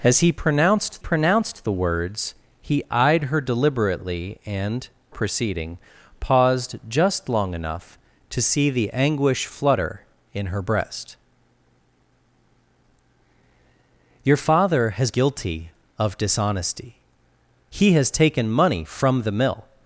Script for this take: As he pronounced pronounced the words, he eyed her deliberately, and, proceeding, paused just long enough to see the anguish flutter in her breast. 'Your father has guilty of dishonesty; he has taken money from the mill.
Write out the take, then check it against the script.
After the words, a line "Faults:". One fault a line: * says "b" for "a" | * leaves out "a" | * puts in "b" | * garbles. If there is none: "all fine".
As he pronounced pronounced the words, he eyed her deliberately, and, proceeding, paused just long enough to see the anguish flutter in her breast. 'Your father has guilty of dishonesty; he has taken money from the mill.
Faults:
all fine